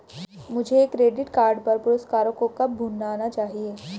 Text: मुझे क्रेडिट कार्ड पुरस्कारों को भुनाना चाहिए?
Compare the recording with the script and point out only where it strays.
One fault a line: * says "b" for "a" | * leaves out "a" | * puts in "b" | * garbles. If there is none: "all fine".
* puts in "पर"
* puts in "कब"